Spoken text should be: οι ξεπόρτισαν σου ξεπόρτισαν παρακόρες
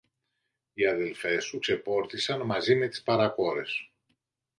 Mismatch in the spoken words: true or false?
true